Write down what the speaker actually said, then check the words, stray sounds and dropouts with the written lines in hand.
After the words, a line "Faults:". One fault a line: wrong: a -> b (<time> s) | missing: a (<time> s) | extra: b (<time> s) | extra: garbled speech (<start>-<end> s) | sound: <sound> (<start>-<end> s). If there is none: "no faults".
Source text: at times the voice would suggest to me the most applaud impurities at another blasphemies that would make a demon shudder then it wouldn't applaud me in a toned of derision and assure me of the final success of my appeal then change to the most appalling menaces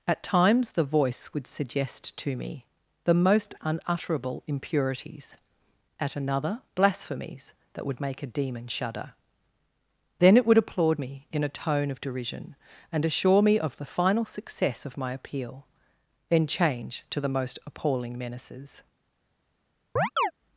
at times the voice would suggest to me the most unutterable impurities at another blasphemies that would make a demon shudder then it would applaud me in a tone of derision and assure me of the final success of my appeal then change to the most appalling menaces
Faults:
wrong: applaud -> unutterable (3.6 s)
wrong: wouldn't -> would (10.4 s)
wrong: toned -> tone (11.5 s)
sound: chirp (20.0-20.3 s)